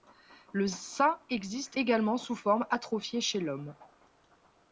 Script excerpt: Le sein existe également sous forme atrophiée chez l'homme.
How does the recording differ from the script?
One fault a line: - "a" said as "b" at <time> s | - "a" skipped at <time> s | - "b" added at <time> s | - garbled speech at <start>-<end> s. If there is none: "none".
none